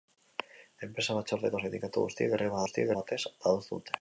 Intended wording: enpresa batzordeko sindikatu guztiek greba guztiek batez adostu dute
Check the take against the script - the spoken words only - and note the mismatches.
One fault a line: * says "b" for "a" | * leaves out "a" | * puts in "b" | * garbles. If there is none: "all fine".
all fine